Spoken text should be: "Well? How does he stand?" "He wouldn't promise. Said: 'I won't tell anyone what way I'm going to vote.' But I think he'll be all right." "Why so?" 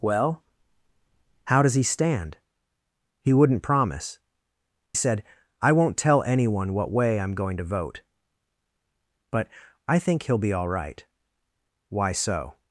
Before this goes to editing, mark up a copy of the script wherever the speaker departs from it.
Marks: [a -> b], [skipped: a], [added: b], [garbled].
"Well? How does he stand?" "He wouldn't promise. Said: 'I won't tell anyone what way I'm going to vote.' But I think he'll be all right." "Why so?"